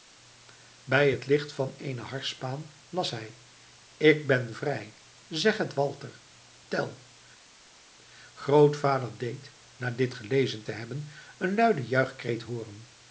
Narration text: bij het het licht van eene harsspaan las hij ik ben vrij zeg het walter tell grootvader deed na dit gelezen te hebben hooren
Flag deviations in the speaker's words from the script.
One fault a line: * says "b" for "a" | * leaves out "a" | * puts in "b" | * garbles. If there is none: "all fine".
* leaves out "het"
* puts in "een luiden juichkreet"